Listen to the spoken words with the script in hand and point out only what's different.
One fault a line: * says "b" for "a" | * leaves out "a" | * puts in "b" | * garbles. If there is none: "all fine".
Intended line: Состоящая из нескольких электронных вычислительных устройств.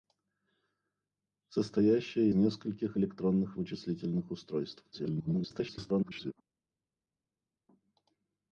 * leaves out "из"
* garbles